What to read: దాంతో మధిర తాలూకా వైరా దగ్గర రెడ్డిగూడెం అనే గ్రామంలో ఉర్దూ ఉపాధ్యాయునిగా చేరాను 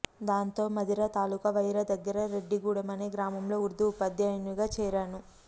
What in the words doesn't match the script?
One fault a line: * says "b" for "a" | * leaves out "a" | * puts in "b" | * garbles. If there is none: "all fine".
all fine